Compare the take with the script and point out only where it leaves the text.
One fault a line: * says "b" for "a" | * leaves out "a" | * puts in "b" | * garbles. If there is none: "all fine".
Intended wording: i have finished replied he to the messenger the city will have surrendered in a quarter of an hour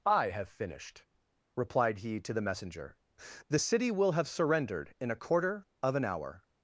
all fine